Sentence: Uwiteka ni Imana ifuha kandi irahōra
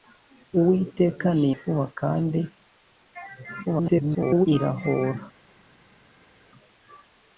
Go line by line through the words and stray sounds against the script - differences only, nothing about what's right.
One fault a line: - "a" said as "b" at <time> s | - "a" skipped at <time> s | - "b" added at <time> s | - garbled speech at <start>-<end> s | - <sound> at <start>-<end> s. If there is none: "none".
- "Imana" skipped at 1.5 s
- garbled speech at 3.6-4.5 s